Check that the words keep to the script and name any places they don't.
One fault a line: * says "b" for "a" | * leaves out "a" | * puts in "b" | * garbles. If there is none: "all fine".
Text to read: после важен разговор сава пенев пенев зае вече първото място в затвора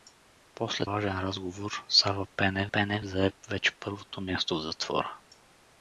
all fine